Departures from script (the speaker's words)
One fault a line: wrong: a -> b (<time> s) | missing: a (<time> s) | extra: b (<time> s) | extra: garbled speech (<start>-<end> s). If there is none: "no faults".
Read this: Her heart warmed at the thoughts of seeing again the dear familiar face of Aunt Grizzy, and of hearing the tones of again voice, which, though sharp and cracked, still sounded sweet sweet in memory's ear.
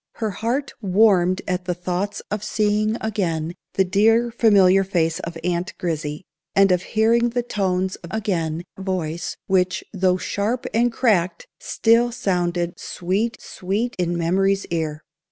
no faults